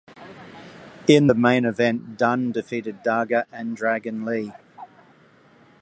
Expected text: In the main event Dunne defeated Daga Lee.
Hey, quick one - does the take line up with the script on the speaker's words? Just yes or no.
no